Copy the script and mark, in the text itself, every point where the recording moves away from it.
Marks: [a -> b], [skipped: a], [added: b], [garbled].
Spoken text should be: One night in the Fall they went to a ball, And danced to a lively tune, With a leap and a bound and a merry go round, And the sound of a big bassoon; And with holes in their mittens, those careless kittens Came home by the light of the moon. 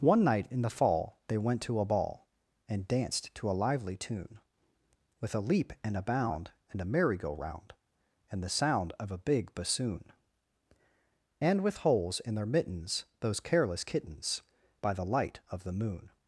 One night in the Fall they went to a ball, And danced to a lively tune, With a leap and a bound and a merry go round, And the sound of a big bassoon; And with holes in their mittens, those careless kittens [skipped: Came home] by the light of the moon.